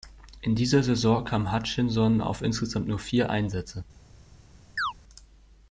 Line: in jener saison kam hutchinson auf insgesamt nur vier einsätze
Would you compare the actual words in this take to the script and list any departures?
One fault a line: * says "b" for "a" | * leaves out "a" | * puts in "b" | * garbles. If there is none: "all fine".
* says "dieser" for "jener"